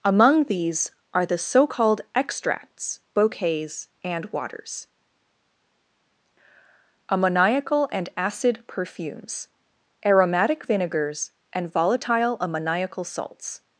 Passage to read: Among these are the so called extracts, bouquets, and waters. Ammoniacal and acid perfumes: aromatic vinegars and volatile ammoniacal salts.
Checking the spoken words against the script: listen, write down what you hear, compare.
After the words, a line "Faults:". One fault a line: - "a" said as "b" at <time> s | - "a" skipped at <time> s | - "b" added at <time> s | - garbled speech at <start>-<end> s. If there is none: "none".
Among these are the so called extracts, bouquets, and waters. Ammoniacal and acid perfumes: aromatic vinegars and volatile ammoniacal salts.
Faults:
none